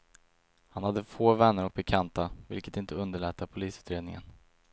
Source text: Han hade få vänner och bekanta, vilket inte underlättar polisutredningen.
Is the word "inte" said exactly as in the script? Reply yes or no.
yes